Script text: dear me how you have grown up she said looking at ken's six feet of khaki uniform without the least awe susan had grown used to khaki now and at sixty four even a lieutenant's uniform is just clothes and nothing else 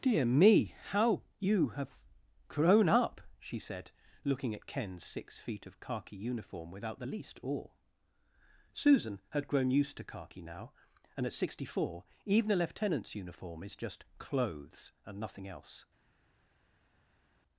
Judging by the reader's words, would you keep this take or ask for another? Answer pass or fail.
pass